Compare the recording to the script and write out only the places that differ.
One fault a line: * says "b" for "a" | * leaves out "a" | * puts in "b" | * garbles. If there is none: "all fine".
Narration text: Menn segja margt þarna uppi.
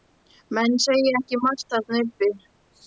* puts in "ekki"